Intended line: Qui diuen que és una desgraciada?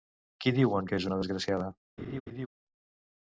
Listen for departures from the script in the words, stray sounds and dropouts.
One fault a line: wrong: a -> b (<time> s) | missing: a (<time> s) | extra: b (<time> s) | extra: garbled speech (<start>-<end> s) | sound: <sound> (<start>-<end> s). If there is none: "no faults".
sound: laugh (2.0-2.5 s)